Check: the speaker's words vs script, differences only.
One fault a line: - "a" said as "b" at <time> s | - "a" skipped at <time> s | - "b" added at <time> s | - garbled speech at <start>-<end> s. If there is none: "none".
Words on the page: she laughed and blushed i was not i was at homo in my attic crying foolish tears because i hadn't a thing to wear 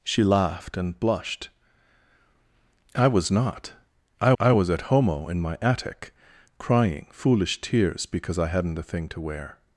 - "i" added at 4.4 s